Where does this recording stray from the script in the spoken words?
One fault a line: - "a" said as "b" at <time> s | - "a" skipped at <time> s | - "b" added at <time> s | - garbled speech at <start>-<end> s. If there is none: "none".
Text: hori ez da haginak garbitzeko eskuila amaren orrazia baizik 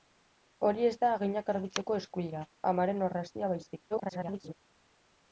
- garbled speech at 3.9-4.5 s